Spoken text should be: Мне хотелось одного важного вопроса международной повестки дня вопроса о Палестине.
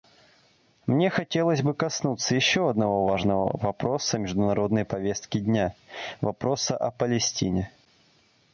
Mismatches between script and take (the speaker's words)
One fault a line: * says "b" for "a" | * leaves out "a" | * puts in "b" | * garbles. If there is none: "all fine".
* puts in "бы коснуться еще"